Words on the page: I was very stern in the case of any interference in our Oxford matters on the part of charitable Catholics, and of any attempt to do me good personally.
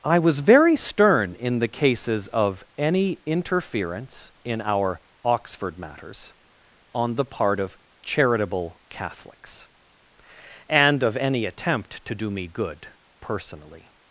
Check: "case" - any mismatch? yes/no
yes